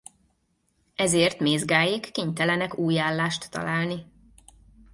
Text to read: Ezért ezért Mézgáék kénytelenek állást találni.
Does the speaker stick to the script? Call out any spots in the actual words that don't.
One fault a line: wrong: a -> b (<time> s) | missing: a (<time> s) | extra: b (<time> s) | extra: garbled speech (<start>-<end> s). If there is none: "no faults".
missing: ezért (1.4 s)
extra: új (2.8 s)